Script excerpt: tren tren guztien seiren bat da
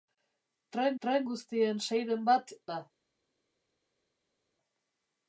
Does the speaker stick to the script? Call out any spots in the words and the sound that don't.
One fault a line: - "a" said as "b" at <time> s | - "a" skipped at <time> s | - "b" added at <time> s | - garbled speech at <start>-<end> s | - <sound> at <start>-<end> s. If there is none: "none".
none